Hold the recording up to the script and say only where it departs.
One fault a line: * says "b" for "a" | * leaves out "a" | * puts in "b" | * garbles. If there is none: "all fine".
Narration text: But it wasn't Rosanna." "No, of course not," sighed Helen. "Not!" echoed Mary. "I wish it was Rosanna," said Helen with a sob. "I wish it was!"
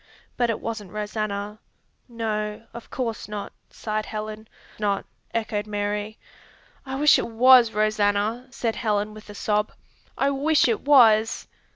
all fine